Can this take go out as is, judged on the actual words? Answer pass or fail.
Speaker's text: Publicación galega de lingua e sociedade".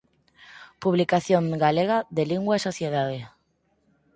pass